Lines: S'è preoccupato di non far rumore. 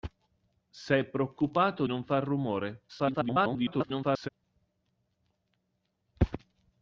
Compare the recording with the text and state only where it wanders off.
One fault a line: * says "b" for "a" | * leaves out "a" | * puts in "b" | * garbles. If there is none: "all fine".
* leaves out "di"
* garbles